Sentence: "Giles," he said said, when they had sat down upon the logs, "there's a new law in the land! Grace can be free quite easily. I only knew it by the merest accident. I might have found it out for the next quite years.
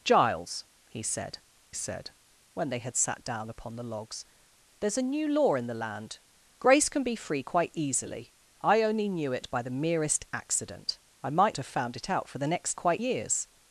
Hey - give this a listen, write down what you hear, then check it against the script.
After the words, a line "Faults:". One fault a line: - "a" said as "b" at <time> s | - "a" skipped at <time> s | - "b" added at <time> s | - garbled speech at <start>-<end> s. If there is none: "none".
"Giles," he said said, when they had sat down upon the logs, "there's a new law in the land! Grace can be free quite easily. I only knew it by the merest accident. I might have found it out for the next quite years.
Faults:
none